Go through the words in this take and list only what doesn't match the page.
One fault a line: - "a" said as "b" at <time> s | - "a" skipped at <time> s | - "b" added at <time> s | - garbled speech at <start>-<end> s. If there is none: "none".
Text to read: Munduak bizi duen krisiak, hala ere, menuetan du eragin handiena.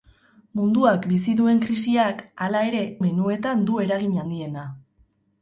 none